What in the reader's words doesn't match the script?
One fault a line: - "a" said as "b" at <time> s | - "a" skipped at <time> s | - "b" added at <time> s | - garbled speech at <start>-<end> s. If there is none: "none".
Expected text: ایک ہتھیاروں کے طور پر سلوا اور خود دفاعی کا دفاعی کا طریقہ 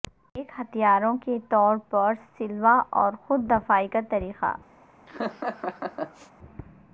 - "دفاعی کا" skipped at 4.0 s